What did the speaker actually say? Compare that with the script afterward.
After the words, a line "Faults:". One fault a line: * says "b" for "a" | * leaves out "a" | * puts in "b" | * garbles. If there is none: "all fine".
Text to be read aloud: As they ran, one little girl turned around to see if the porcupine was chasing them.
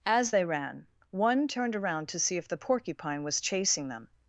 As they ran, one turned around to see if the porcupine was chasing them.
Faults:
* leaves out "little girl"